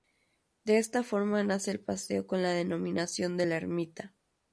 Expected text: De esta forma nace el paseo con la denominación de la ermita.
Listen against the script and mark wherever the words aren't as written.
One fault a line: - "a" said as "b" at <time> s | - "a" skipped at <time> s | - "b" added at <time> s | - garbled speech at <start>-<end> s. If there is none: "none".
none